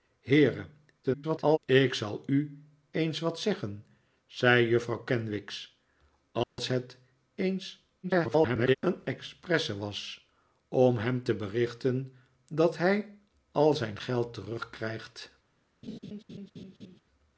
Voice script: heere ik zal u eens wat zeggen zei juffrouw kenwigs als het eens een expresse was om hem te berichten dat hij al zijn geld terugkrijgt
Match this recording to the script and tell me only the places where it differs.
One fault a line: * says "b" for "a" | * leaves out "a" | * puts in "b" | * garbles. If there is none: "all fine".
* garbles
* garbles